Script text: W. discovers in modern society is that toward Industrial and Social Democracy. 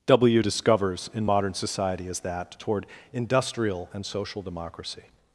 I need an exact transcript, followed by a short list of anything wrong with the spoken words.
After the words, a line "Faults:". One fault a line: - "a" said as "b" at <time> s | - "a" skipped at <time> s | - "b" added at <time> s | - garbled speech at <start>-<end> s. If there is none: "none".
W. discovers in modern society is that toward Industrial and Social Democracy.
Faults:
none